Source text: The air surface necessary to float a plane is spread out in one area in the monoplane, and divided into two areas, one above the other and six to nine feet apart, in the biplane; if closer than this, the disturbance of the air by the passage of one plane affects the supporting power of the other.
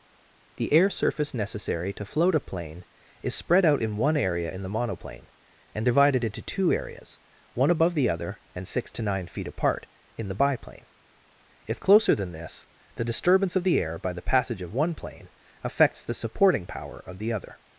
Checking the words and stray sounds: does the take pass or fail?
pass